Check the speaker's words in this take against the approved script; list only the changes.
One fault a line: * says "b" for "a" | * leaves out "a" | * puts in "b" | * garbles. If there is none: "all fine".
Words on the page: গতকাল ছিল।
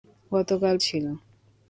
all fine